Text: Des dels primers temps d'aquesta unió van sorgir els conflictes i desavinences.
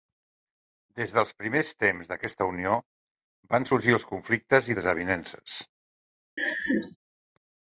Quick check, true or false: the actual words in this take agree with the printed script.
true